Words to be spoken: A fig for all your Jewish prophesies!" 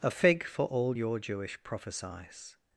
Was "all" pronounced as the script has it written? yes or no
yes